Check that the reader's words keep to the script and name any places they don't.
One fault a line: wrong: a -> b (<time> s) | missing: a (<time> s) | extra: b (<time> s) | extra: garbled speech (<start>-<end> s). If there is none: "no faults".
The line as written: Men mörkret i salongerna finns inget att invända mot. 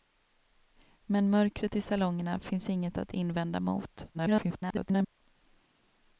extra: garbled speech (4.1-5.1 s)